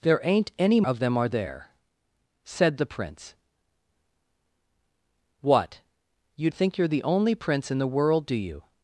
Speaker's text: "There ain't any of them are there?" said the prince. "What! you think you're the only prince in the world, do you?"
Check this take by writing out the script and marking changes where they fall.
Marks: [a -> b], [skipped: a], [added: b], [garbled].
"There ain't any of them are there?" said the prince. "What! you think you're the only prince in the world, do you?"